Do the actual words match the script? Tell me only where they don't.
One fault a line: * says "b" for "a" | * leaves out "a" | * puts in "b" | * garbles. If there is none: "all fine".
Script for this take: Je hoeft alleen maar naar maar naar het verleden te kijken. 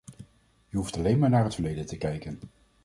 * leaves out "maar naar"